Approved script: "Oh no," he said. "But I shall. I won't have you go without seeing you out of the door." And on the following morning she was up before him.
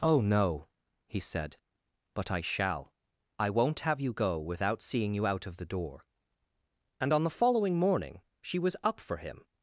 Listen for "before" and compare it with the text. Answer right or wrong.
wrong